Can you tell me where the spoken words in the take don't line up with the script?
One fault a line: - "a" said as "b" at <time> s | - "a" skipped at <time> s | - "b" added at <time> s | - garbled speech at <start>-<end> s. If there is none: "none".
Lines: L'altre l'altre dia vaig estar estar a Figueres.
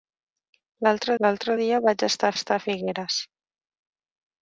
none